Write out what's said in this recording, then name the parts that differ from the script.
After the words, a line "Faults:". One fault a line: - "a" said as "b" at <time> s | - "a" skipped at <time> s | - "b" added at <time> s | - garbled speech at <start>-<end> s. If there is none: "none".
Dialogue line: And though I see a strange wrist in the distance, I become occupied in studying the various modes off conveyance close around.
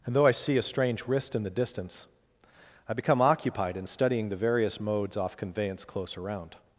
And though I see a strange wrist in the distance, I become occupied in studying the various modes off conveyance close around.
Faults:
none